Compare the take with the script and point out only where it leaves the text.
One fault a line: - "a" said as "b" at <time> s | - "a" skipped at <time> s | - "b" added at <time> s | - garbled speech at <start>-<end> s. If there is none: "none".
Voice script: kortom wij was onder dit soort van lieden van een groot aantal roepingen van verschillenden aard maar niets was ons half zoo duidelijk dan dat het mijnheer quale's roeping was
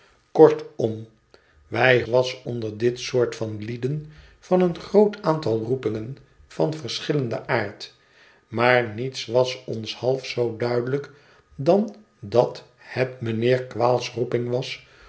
none